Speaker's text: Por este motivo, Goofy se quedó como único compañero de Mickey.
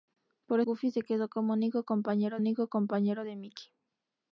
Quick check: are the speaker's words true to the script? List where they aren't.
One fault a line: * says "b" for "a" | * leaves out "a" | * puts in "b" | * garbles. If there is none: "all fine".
* leaves out "este motivo"
* puts in "único compañero"